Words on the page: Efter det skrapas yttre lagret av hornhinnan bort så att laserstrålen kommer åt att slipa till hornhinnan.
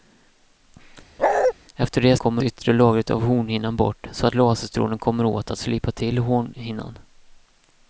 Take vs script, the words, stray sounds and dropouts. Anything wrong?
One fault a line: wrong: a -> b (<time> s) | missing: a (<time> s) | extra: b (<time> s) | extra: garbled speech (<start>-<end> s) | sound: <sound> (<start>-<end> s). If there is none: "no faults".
sound: bark (1.2-1.5 s)
wrong: skrapas -> kommer (2.2 s)